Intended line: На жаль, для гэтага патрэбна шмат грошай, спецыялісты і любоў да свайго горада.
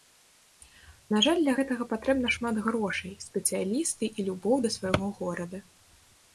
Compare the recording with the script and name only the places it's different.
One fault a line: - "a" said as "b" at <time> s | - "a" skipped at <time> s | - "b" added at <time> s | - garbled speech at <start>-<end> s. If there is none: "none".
none